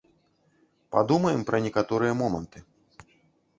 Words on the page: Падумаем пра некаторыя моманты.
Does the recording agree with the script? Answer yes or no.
yes